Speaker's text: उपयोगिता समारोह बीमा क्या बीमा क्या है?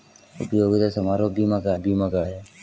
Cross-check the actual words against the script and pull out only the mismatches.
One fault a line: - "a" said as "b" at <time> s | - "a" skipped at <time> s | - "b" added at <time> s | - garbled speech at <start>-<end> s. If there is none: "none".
none